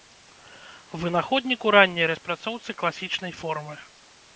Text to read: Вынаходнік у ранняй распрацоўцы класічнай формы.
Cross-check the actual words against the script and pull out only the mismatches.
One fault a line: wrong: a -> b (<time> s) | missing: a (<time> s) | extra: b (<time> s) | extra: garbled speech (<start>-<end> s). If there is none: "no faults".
no faults